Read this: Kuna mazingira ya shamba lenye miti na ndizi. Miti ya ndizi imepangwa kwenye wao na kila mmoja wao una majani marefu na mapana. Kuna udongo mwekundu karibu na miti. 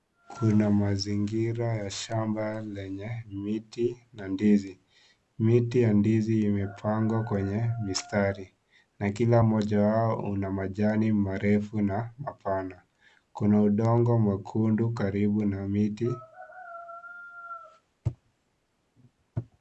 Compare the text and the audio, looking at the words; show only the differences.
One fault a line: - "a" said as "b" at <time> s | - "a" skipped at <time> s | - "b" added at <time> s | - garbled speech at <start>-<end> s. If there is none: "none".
- "wao" said as "mistari" at 7.8 s